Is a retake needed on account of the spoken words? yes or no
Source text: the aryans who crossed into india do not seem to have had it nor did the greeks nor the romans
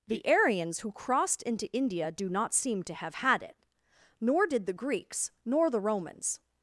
no